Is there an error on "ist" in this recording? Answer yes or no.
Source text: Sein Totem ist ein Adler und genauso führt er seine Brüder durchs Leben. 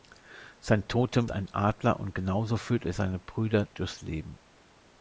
yes